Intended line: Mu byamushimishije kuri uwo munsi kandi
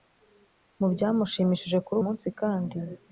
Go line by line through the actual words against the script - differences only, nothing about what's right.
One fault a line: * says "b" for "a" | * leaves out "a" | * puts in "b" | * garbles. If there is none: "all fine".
* leaves out "uwo"